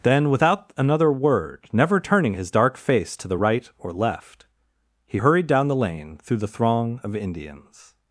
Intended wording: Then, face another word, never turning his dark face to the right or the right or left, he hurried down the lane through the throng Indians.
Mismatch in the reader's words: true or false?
true